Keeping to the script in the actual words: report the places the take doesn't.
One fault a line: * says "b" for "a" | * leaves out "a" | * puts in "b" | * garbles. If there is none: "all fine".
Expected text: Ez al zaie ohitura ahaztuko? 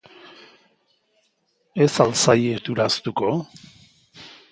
all fine